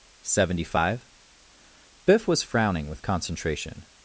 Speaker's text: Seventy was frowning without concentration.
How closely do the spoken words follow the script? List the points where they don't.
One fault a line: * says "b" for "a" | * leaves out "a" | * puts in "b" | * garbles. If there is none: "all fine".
* puts in "five Biff"
* says "with" for "without"